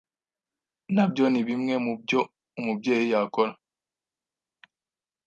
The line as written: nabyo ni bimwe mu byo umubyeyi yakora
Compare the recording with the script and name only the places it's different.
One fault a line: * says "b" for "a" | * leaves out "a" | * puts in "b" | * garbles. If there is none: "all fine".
all fine